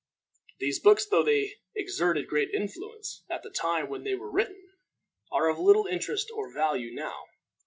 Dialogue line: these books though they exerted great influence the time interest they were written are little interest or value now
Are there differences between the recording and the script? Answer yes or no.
yes